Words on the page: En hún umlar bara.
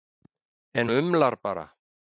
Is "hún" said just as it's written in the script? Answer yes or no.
no